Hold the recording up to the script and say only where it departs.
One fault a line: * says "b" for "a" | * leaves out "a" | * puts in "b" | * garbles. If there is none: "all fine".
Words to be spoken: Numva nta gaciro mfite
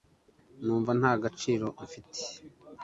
all fine